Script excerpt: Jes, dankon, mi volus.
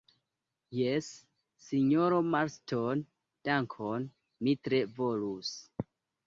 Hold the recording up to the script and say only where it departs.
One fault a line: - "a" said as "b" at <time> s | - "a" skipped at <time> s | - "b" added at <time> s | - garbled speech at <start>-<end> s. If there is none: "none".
- "sinjoro Marston" added at 1.6 s
- "tre" added at 4.7 s